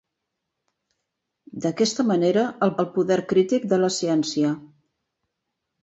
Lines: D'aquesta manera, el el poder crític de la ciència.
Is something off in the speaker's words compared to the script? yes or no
no